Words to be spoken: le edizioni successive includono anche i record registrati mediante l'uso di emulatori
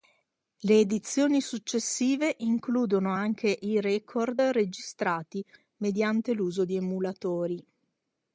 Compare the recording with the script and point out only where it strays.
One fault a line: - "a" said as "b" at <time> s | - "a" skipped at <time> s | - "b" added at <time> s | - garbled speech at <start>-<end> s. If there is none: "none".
none